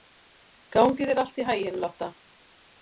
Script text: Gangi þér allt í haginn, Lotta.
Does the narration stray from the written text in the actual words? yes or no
no